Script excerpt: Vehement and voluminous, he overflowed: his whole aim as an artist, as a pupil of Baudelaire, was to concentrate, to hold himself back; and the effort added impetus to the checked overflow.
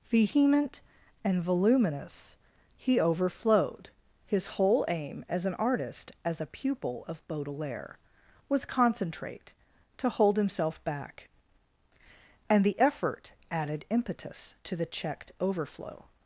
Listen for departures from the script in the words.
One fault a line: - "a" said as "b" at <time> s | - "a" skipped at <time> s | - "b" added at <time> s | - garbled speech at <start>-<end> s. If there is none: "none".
- "to" skipped at 8.7 s